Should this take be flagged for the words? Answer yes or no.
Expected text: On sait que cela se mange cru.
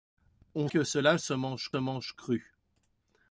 yes